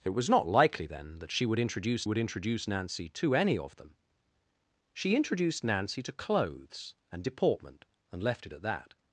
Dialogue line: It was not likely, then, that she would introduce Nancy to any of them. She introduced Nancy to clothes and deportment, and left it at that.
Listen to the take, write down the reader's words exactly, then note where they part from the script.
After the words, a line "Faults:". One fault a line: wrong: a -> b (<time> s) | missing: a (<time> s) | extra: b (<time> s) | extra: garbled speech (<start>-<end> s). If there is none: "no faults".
It was not likely, then, that she would introduce would introduce Nancy to any of them. She introduced Nancy to clothes and deportment, and left it at that.
Faults:
extra: would introduce (2.0 s)